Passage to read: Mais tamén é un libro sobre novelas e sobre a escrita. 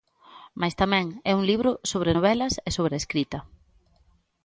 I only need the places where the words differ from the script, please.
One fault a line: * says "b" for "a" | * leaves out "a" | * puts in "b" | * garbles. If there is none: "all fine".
all fine